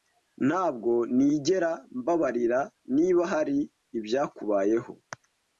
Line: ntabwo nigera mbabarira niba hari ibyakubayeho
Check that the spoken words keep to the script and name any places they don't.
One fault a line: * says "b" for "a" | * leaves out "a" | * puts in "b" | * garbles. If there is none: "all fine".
all fine